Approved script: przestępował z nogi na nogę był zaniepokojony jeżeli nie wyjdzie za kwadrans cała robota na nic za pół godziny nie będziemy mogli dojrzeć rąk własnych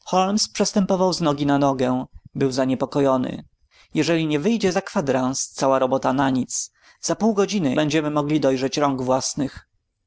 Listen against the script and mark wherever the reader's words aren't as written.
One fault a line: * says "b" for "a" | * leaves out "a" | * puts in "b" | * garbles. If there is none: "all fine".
* leaves out "nie"